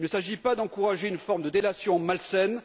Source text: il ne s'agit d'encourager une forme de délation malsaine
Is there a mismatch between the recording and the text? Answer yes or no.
yes